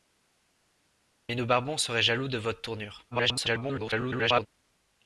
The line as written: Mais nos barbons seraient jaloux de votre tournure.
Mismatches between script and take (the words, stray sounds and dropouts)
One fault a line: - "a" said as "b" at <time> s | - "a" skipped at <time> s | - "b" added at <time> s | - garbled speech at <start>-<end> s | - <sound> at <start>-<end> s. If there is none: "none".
- garbled speech at 3.1-4.5 s